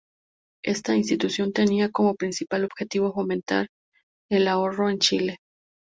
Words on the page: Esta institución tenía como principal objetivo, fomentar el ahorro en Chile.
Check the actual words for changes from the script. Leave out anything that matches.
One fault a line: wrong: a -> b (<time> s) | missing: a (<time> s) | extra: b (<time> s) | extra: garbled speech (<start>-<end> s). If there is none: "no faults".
no faults